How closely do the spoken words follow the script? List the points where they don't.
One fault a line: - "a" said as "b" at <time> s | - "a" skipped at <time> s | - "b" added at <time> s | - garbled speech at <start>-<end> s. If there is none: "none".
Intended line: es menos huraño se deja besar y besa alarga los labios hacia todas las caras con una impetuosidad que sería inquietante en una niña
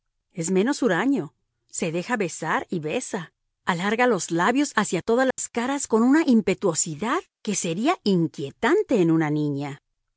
none